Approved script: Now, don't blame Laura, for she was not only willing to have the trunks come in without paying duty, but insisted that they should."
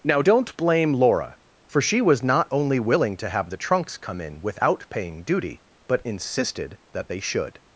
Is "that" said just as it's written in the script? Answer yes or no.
yes